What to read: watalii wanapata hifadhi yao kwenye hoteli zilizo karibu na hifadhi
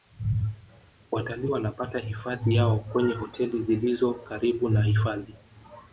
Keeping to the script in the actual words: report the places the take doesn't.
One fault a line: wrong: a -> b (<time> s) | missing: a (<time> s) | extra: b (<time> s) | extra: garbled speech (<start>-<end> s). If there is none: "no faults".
no faults